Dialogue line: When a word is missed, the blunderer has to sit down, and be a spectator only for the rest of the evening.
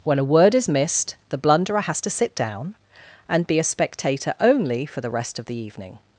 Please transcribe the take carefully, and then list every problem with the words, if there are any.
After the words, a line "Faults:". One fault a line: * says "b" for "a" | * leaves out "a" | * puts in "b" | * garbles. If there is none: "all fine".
When a word is missed, the blunderer has to sit down, and be a spectator only for the rest of the evening.
Faults:
all fine